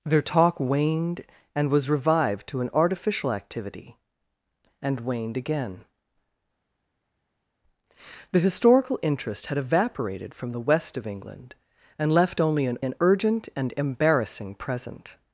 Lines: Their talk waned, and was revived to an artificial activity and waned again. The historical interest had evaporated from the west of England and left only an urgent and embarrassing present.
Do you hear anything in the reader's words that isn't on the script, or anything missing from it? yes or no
yes